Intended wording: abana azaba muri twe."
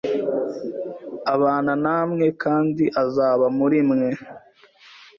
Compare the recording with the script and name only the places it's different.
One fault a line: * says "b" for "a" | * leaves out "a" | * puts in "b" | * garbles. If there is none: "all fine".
* puts in "namwe kandi"
* says "mwe" for "twe"